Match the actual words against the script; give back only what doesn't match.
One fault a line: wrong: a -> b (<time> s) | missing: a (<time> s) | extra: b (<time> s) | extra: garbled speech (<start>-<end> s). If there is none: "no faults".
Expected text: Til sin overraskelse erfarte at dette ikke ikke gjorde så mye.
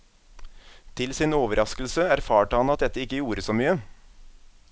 extra: han (2.6 s)
missing: ikke (3.2 s)